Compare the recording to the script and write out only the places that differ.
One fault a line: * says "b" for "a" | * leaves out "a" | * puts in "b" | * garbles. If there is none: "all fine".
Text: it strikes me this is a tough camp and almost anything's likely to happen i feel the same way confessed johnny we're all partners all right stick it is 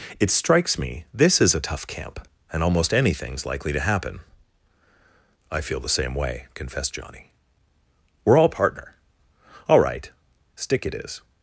* says "partner" for "partners"